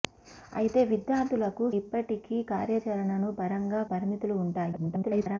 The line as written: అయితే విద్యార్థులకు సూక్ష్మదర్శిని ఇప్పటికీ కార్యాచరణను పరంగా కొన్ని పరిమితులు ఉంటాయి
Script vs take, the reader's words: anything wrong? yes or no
yes